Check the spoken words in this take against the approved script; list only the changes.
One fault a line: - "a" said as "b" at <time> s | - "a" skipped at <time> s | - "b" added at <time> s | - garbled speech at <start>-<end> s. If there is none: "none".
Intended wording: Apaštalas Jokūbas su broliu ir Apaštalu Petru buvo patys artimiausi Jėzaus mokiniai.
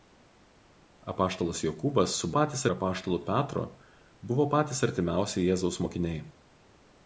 - "broliu" said as "patys" at 2.4 s